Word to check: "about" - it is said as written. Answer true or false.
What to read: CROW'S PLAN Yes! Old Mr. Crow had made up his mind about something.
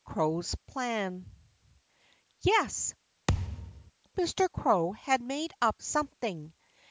false